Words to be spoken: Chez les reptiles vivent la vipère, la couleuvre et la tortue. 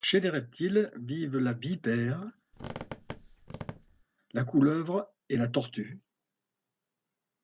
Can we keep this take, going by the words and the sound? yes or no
no